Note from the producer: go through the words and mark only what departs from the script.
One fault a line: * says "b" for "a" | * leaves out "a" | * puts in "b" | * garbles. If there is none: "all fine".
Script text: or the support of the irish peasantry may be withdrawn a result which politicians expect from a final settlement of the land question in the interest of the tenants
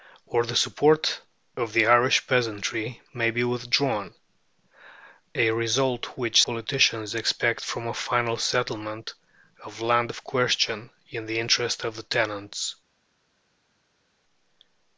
all fine